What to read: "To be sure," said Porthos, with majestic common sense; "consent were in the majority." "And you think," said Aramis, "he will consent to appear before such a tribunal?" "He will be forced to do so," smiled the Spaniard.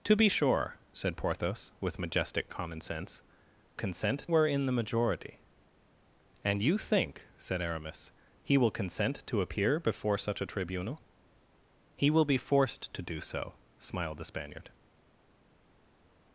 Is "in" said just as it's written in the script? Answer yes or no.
yes